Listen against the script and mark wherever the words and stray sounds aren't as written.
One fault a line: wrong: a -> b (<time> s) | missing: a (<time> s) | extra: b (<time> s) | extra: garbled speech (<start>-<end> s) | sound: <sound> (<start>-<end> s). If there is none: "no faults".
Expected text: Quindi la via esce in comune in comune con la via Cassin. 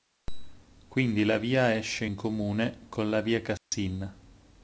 missing: in comune (2.8 s)
sound: dropout (3.6-3.7 s)